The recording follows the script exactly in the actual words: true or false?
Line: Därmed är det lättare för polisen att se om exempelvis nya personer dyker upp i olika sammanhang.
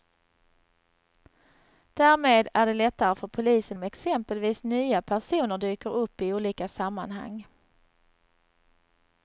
false